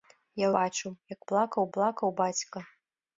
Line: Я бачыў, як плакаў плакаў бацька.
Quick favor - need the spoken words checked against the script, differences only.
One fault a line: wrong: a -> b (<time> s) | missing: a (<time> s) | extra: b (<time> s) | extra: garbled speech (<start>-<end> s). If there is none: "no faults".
no faults